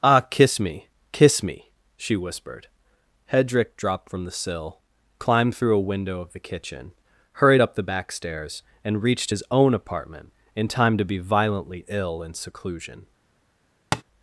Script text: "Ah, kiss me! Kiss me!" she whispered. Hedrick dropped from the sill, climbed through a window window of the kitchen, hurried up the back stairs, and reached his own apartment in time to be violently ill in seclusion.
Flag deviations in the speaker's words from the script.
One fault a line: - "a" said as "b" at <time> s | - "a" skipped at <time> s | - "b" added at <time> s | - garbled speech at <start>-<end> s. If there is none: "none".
- "window" skipped at 6.2 s